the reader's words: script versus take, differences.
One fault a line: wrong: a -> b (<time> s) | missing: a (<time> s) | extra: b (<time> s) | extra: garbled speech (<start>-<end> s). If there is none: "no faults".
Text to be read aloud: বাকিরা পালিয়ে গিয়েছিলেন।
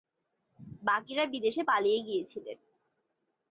extra: বিদেশে (1.2 s)